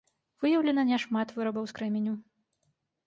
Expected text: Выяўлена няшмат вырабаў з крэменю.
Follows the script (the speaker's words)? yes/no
yes